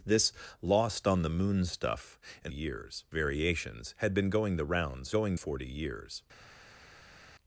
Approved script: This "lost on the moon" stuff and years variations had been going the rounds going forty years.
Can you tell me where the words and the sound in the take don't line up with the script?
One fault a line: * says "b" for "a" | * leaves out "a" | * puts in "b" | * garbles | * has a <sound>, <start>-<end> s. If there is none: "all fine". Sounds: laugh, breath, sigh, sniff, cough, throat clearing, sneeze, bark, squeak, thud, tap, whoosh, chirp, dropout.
all fine